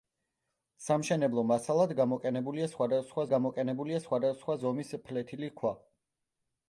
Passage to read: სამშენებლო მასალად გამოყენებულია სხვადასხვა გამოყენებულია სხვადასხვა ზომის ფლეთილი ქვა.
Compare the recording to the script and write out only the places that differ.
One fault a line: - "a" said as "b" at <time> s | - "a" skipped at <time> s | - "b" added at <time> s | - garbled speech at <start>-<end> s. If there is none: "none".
none